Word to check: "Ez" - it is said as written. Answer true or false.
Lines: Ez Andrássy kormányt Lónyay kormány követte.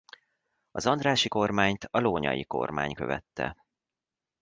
false